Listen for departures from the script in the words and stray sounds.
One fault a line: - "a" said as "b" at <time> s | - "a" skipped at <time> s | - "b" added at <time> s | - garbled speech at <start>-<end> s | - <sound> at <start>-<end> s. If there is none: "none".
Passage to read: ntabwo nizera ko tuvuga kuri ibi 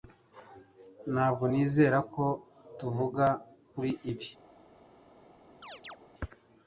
- chirp at 5.6-6.0 s